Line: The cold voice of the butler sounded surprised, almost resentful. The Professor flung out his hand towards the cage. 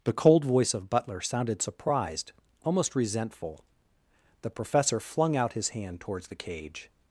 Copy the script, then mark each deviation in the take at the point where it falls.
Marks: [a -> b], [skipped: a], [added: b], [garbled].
The cold voice of [skipped: the] butler sounded surprised, almost resentful. The Professor flung out his hand towards the cage.